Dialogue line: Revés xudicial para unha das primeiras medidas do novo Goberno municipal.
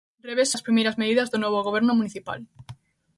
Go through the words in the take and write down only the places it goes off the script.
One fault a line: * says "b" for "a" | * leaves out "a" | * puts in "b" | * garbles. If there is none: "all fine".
* leaves out "xudicial para unha"